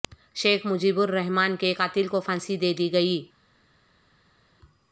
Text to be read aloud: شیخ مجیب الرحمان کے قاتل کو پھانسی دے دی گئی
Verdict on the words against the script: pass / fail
pass